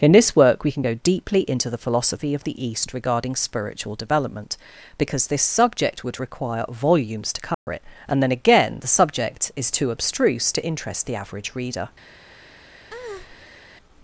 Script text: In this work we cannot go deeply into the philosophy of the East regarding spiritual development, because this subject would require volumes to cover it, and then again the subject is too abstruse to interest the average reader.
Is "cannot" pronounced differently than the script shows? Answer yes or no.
yes